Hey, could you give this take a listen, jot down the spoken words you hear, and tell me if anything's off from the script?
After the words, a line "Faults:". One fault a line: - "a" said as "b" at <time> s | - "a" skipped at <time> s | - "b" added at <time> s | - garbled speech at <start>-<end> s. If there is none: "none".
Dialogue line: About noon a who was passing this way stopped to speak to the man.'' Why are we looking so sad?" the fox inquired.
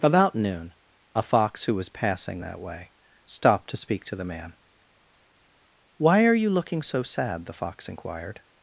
About noon a fox who was passing that way stopped to speak to the man.'' Why are you looking so sad?" the fox inquired.
Faults:
- "fox" added at 1.2 s
- "this" said as "that" at 2.4 s
- "we" said as "you" at 6.3 s